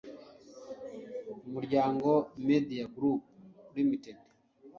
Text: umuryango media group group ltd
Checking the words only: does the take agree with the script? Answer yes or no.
no